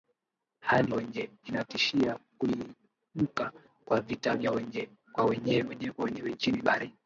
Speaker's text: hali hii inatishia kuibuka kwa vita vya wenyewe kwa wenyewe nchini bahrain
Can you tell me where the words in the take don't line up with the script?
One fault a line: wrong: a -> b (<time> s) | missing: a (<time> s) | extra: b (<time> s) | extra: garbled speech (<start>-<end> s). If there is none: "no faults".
wrong: hii -> wenyewe (0.9 s)